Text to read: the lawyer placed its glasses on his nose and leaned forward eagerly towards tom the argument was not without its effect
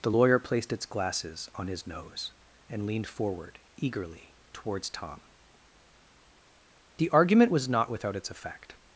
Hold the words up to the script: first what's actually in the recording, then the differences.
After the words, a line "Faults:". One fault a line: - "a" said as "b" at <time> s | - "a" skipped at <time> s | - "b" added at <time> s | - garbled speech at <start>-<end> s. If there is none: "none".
the lawyer placed its glasses on his nose and leaned forward eagerly towards tom the argument was not without its effect
Faults:
none